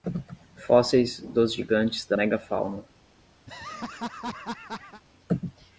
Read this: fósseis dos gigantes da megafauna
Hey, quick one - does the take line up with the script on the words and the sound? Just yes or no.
no